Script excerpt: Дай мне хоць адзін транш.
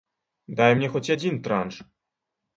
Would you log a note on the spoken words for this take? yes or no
no